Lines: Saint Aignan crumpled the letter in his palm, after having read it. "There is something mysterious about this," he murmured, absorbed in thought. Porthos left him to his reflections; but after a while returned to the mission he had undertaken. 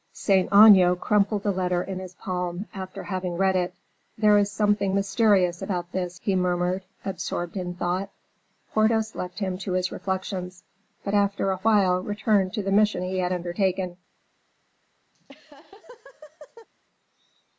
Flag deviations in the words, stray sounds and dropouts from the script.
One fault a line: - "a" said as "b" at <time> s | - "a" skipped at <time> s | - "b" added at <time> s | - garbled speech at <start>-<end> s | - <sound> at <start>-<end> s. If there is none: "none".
- laugh at 15.1-16.7 s